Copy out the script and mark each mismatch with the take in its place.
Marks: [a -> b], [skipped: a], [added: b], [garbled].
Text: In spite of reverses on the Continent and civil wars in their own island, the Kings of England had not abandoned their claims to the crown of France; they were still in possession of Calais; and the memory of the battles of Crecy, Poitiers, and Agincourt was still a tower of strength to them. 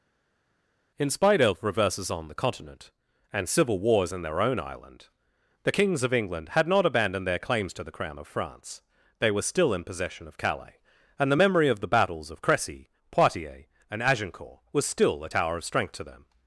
In spite of reverses on the Continent and civil wars in their own island, the Kings of England had not abandoned their claims to the crown of France; they were still in possession of Calais; and the memory of the battles of Crecy, Poitiers, and Agincourt was still a tower of strength to them.